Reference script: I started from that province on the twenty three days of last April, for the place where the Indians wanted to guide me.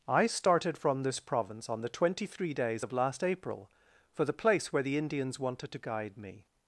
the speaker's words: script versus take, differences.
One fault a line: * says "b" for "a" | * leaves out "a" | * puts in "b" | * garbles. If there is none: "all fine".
* says "this" for "that"